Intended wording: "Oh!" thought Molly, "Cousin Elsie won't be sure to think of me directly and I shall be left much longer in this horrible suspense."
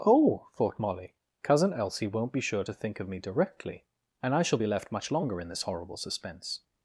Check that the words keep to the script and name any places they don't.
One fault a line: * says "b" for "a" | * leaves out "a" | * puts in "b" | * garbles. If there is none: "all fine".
all fine